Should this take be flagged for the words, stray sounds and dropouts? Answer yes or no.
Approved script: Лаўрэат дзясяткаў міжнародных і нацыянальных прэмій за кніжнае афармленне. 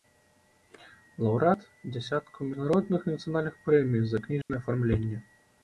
yes